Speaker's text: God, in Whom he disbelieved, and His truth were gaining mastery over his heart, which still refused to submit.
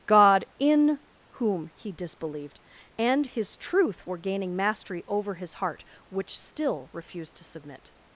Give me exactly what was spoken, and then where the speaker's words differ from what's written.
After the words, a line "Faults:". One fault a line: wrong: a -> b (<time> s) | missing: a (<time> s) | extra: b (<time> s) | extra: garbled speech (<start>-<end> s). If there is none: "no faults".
God, in Whom he disbelieved, and His truth were gaining mastery over his heart, which still refused to submit.
Faults:
no faults